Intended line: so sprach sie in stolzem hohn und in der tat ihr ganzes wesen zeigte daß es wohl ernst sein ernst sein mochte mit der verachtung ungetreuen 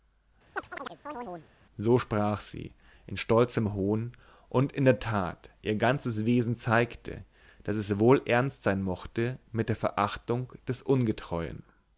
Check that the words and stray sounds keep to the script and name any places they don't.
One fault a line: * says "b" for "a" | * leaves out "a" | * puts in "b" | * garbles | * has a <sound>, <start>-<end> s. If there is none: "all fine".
* has a chirp, 0.6-1.5 s
* leaves out "ernst sein"
* puts in "des"